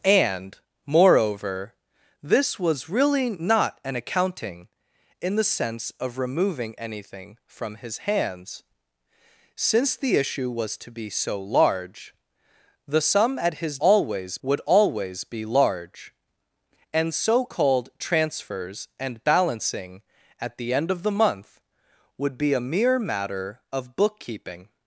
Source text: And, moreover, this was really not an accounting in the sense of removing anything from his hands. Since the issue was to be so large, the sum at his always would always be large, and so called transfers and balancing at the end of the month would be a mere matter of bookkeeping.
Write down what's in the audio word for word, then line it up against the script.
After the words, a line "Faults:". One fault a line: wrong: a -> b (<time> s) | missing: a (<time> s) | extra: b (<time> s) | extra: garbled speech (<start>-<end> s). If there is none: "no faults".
And, moreover, this was really not an accounting in the sense of removing anything from his hands. Since the issue was to be so large, the sum at his always would always be large, and so called transfers and balancing at the end of the month would be a mere matter of bookkeeping.
Faults:
no faults